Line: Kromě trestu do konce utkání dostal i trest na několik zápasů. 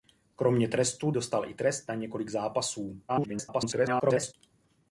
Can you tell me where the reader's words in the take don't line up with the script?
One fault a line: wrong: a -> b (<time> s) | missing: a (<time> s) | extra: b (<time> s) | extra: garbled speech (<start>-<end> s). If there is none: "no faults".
missing: do konce utkání (1.1 s)
extra: garbled speech (3.1-4.3 s)